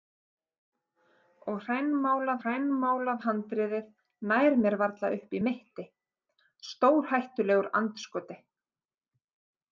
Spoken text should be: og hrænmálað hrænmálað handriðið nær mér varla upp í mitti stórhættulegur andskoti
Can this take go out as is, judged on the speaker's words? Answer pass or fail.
pass